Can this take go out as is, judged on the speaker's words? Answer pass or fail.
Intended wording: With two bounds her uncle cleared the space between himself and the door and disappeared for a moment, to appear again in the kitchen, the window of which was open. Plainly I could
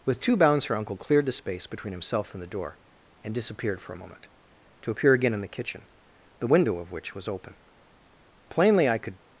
pass